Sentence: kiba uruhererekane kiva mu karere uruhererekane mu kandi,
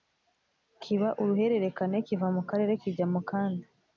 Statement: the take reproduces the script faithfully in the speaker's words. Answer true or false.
false